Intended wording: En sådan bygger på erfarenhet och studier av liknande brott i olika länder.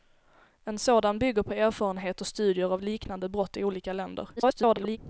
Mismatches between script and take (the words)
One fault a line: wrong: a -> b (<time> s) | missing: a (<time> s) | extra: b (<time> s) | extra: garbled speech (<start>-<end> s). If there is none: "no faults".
extra: garbled speech (4.4-5.0 s)